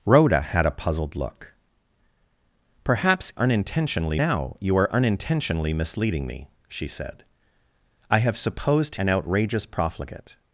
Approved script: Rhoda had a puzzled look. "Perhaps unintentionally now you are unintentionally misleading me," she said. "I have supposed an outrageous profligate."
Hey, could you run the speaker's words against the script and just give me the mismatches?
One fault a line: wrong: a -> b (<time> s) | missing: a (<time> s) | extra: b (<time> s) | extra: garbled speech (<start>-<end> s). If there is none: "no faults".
no faults